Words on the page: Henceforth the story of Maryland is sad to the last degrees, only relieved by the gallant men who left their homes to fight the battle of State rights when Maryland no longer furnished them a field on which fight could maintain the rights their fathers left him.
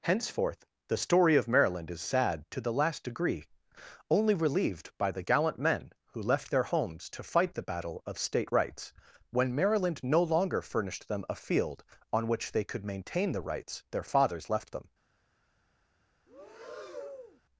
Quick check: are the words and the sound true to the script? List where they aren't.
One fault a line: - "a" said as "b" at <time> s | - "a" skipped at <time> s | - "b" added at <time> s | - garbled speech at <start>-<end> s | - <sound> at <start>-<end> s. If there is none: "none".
- "degrees" said as "degree" at 3.0 s
- "fight" said as "they" at 12.5 s
- "him" said as "them" at 14.7 s
- breath at 16.3-17.4 s